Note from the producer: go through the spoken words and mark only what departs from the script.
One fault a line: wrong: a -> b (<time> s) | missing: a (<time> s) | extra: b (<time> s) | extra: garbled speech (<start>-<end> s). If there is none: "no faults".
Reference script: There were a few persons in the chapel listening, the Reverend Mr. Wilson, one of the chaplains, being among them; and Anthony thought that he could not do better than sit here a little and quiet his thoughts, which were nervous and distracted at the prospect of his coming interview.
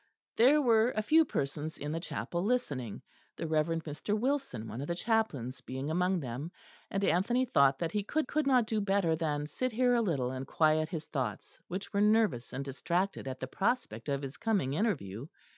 extra: could (8.2 s)